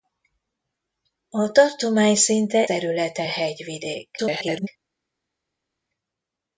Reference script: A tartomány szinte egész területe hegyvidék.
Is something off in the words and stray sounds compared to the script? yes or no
yes